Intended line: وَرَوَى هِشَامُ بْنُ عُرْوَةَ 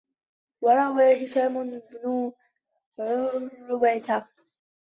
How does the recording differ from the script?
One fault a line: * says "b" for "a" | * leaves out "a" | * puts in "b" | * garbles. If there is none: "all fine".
all fine